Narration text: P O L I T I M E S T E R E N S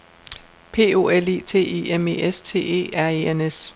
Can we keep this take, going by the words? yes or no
yes